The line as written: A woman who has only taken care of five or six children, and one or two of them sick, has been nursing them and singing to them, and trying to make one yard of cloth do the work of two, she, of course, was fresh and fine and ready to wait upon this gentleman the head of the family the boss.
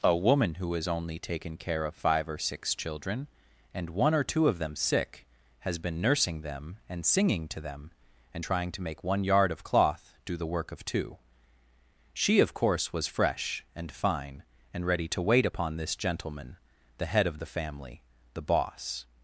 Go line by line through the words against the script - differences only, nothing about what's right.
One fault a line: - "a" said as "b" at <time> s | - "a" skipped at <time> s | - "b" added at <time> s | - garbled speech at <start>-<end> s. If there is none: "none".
none